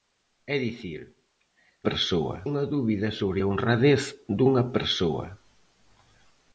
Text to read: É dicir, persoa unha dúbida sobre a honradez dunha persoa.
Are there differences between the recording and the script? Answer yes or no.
no